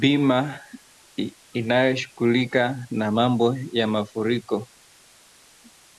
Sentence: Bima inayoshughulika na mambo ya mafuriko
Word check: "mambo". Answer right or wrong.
right